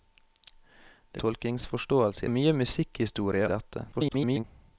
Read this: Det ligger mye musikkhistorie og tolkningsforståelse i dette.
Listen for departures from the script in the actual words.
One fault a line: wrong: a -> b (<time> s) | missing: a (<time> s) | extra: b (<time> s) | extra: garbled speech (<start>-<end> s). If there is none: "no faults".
wrong: ligger -> tolkningsforståelse (1.2 s)
missing: og tolkningsforståelse (3.5 s)
extra: garbled speech (3.9-4.4 s)